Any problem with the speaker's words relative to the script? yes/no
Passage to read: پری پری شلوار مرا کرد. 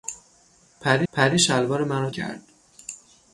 no